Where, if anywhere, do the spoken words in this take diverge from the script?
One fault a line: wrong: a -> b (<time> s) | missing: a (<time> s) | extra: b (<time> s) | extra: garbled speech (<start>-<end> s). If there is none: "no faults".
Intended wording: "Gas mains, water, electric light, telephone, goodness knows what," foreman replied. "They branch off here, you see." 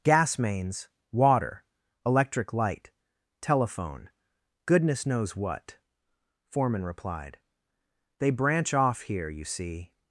no faults